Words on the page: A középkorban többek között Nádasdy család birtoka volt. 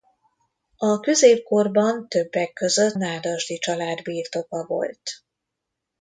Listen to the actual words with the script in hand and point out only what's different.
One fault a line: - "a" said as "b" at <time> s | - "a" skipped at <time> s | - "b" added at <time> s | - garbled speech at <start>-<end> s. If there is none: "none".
none